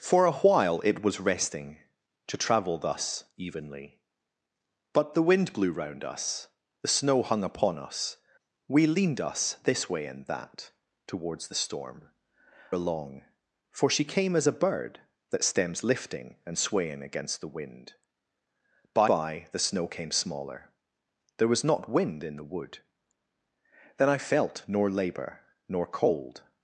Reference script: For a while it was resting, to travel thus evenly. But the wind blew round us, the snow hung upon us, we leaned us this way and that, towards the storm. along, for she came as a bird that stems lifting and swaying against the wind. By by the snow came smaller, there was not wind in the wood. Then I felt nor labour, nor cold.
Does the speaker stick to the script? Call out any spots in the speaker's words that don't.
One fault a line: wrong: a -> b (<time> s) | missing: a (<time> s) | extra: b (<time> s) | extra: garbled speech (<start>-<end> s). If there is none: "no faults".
no faults